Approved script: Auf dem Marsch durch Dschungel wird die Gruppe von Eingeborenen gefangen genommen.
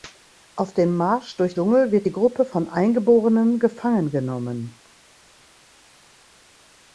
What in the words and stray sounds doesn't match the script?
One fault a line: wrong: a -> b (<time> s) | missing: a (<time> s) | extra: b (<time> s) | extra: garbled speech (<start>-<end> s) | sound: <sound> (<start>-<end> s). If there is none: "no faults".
no faults